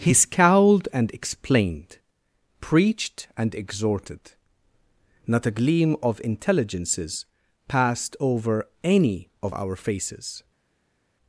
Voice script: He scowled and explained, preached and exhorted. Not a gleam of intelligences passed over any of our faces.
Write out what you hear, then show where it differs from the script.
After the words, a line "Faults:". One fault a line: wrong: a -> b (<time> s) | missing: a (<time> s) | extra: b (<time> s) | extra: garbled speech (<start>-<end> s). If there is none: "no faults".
He scowled and explained, preached and exhorted. Not a gleam of intelligences passed over any of our faces.
Faults:
no faults